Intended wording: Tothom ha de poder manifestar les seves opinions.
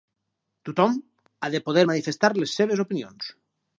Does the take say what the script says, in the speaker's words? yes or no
yes